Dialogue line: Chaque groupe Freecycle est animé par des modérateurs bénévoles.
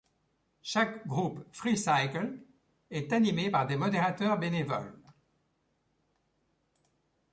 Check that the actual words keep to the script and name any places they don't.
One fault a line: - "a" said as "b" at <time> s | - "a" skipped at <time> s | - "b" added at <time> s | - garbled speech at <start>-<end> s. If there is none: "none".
none